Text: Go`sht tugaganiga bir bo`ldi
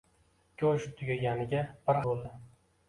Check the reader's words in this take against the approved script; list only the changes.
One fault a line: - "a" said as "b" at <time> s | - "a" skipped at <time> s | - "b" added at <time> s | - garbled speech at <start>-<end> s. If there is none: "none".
none